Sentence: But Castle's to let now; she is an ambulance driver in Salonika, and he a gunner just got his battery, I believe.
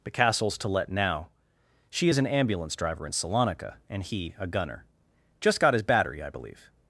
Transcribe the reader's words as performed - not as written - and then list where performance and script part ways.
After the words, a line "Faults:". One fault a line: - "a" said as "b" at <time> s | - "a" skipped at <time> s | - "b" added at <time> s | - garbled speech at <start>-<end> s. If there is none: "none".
But Castle's to let now; she is an ambulance driver in Salonika, and he a gunner just got his battery, I believe.
Faults:
none